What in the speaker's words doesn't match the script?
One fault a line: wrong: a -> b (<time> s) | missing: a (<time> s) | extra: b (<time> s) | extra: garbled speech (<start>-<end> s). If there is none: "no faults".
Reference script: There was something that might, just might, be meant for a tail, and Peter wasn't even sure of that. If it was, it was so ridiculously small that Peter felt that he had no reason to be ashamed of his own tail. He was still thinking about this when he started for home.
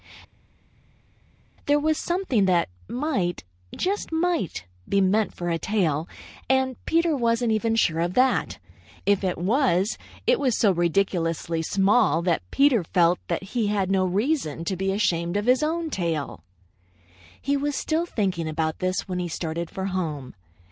no faults